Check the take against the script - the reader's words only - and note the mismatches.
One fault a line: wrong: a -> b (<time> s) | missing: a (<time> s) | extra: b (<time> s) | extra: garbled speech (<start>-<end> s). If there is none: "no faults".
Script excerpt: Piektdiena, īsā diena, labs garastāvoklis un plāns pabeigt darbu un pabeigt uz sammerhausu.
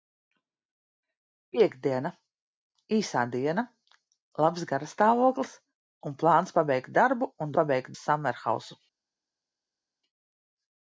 no faults